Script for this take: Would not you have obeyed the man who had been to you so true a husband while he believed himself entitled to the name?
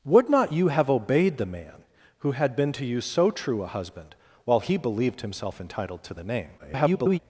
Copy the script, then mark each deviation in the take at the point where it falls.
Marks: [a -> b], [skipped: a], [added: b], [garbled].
Would not you have obeyed the man who had been to you so true a husband while he believed himself entitled to the name? [garbled]